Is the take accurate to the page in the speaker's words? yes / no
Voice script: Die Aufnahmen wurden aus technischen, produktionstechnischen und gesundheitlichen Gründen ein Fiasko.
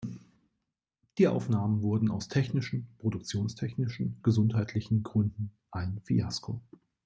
no